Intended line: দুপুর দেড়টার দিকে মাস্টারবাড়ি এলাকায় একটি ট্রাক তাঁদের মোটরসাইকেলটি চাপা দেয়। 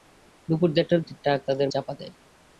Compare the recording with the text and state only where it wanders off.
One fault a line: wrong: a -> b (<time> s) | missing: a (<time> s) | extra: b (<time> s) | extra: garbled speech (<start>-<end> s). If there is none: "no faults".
missing: দিকে মাস্টারবাড়ি এলাকায় (1.0 s)
missing: মোটরসাইকেলটি (1.7 s)